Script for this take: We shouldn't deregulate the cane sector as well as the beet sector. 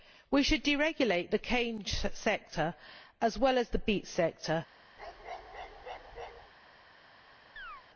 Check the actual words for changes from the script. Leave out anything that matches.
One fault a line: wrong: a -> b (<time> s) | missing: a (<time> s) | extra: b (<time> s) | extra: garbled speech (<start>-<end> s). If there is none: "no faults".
wrong: shouldn't -> should (0.4 s)